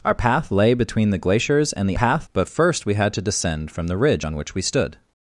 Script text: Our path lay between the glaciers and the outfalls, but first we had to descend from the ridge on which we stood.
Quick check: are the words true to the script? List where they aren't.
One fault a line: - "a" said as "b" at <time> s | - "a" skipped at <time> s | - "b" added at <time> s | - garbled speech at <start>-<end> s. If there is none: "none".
- "outfalls" said as "path" at 1.9 s